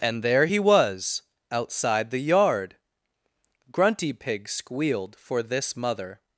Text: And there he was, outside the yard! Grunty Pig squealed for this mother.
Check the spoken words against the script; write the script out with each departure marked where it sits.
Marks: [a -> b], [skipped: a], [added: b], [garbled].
And there he was, outside the yard! Grunty Pig squealed for this mother.